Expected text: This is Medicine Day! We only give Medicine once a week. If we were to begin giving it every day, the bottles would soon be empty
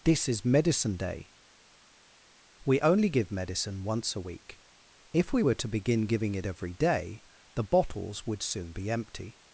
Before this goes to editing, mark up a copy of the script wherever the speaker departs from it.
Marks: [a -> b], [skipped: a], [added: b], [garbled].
This is Medicine Day! We only give Medicine once a week. If we were to begin giving it every day, the bottles would soon be empty